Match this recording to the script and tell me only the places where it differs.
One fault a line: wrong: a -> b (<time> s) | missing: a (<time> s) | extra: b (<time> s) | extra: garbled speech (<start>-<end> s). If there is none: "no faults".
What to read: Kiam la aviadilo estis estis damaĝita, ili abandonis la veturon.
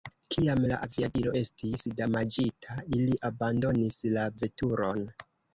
missing: estis (1.8 s)